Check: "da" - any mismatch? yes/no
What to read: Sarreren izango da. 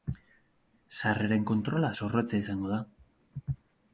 no